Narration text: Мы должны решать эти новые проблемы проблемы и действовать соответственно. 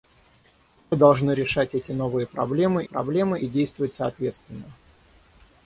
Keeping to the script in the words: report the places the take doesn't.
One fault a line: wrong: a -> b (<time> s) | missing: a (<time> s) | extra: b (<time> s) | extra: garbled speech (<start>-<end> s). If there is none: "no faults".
no faults